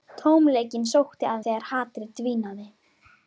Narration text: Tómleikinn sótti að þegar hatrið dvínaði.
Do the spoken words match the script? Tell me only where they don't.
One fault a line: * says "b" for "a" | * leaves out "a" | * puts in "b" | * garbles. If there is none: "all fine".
all fine